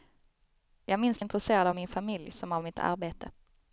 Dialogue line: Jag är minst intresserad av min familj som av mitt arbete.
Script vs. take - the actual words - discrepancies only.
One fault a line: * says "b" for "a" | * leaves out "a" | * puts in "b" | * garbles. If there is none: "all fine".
all fine